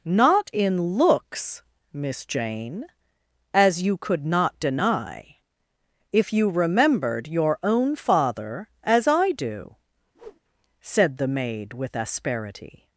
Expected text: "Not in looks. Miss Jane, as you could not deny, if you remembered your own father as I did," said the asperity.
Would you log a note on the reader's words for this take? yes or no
yes